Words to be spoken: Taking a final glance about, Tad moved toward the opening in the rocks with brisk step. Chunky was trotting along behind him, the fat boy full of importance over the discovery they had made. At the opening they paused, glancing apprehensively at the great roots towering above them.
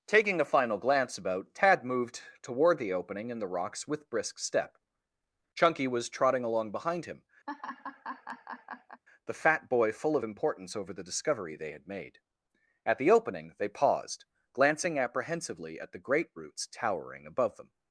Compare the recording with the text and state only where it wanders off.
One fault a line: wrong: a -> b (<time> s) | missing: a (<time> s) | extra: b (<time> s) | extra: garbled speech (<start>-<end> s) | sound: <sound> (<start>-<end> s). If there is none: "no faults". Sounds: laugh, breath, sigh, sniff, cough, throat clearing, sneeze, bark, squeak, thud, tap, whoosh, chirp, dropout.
sound: laugh (7.5-9.0 s)